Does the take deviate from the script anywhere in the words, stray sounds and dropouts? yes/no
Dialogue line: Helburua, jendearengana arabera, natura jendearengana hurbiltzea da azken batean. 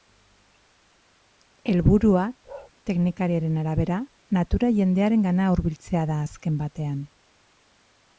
yes